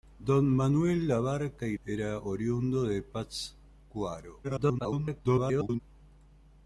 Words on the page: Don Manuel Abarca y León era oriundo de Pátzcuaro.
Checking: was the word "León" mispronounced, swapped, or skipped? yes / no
yes